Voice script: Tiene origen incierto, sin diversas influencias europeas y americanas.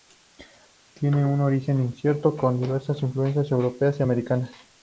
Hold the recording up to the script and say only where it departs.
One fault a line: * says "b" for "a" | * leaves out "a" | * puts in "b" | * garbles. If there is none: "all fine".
* puts in "un"
* says "con" for "sin"